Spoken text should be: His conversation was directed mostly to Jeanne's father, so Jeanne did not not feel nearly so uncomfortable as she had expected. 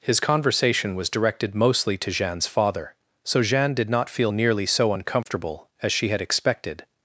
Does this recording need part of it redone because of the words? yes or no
yes